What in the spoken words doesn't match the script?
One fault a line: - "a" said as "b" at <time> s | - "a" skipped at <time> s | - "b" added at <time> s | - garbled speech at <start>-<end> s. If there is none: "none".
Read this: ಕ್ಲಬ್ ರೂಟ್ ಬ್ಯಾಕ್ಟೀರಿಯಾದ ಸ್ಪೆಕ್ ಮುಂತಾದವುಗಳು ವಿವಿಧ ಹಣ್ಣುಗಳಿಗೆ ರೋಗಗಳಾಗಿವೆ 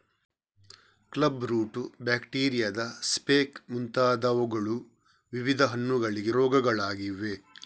none